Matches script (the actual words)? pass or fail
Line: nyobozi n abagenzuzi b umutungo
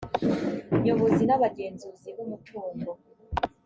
pass